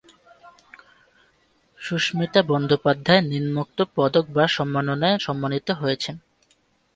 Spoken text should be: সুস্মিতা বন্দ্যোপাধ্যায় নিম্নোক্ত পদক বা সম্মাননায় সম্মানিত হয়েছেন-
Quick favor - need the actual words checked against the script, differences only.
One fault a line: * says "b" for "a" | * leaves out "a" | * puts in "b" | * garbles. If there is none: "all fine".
all fine